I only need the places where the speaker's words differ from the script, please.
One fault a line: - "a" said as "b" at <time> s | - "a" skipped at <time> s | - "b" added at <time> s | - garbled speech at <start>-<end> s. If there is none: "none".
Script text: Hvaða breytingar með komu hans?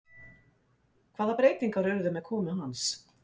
- "urðu" added at 1.9 s